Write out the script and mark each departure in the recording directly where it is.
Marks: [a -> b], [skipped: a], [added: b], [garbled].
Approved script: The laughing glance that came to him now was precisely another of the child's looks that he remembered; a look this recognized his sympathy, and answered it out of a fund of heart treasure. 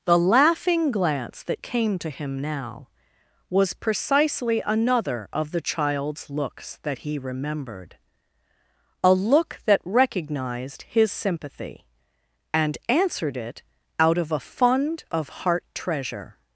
The laughing glance that came to him now was precisely another of the child's looks that he remembered; a look [this -> that] recognized his sympathy, and answered it out of a fund of heart treasure.